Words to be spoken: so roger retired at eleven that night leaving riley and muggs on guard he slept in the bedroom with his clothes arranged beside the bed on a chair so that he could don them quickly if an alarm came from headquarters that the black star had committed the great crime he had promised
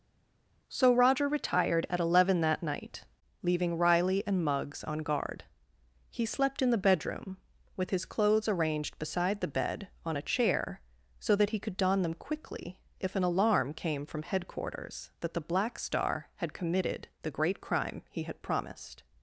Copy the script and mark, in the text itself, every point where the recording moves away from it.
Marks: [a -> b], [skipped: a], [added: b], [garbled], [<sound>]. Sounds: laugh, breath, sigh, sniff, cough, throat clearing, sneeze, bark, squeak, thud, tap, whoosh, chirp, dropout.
so roger retired at eleven that night leaving riley and muggs on guard he slept in the bedroom with his clothes arranged beside the bed on a chair so that he could don them quickly if an alarm came from headquarters that the black star had committed the great crime he had promised